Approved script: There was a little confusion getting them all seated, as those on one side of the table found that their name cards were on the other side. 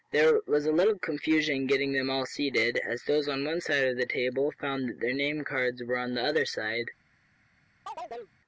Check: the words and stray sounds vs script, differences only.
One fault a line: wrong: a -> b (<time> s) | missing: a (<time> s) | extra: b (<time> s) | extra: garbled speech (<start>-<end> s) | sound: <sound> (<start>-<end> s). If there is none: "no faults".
sound: chirp (7.9-8.4 s)